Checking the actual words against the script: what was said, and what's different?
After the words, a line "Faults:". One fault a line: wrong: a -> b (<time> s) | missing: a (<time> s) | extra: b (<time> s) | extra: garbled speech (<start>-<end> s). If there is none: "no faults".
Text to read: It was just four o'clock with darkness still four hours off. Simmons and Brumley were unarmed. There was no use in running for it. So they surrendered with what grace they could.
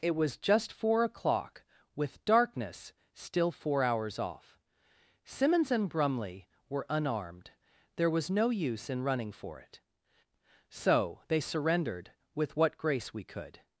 It was just four o'clock with darkness still four hours off. Simmons and Brumley were unarmed. There was no use in running for it. So they surrendered with what grace we could.
Faults:
wrong: they -> we (13.1 s)